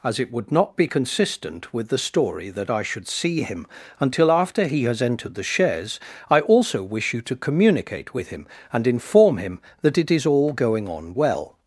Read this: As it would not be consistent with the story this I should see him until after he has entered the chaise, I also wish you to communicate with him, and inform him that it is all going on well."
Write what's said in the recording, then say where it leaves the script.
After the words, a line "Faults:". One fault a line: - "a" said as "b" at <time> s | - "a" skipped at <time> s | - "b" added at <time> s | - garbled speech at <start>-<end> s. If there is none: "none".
As it would not be consistent with the story that I should see him until after he has entered the chaise, I also wish you to communicate with him, and inform him that it is all going on well."
Faults:
- "this" said as "that" at 2.5 s